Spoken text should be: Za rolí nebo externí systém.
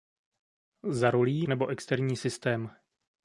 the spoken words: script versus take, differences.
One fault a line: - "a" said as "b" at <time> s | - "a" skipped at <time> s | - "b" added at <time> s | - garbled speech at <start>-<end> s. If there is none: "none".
none